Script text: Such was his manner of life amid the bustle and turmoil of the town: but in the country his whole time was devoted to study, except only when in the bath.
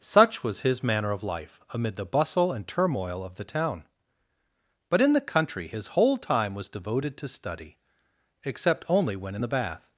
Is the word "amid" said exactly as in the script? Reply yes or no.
yes